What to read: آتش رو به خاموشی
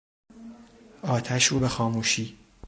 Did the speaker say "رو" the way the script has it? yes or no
yes